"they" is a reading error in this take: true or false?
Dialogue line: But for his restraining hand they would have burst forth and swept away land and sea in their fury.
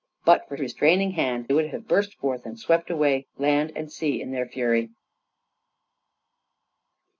true